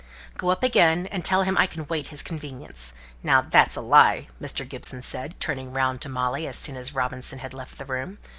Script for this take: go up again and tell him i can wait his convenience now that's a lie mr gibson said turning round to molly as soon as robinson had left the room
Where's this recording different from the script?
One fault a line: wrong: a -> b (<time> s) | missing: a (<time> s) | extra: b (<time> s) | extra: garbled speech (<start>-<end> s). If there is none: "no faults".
no faults